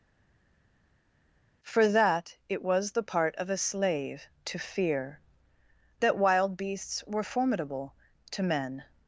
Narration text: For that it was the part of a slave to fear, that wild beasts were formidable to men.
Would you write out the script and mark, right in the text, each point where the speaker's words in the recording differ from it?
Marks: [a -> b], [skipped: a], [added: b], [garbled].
For that it was the part of a slave to fear, that wild beasts were formidable to men.